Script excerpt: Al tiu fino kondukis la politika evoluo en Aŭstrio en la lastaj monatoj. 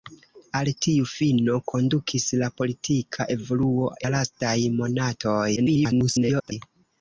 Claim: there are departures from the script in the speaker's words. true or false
true